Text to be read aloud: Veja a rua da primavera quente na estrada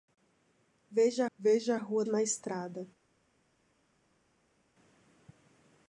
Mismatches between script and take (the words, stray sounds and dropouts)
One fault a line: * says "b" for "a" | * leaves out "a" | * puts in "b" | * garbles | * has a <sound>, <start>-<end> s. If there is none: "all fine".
* puts in "veja"
* leaves out "da primavera quente"